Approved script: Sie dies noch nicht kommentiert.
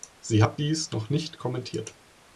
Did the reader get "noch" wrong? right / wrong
right